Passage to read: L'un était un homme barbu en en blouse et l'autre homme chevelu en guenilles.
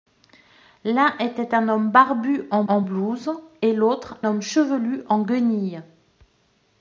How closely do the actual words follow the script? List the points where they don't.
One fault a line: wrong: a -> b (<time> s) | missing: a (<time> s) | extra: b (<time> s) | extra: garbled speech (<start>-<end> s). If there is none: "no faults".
no faults